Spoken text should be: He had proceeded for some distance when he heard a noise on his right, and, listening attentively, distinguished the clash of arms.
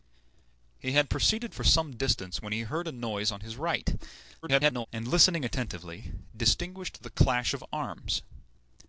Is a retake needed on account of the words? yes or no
yes